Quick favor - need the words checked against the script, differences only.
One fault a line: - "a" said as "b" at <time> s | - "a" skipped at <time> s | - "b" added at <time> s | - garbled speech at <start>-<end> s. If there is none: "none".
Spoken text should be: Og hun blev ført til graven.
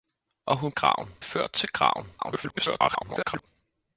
- "blev" said as "graven" at 0.7 s
- garbled speech at 2.2-3.5 s